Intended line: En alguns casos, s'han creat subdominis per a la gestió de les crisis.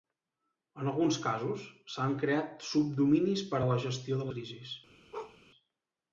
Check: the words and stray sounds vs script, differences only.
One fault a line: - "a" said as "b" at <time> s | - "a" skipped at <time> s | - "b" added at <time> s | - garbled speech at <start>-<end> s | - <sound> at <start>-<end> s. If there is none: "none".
- "les" skipped at 4.3 s
- bark at 5.1-5.4 s